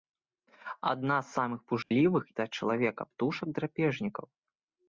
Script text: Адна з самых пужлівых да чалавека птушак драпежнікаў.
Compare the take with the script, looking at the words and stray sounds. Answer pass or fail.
fail